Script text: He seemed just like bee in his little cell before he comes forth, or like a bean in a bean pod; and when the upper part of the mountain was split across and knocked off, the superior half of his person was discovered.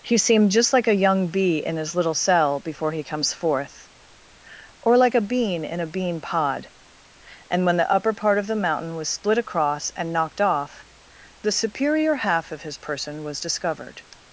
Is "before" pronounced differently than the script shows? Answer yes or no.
no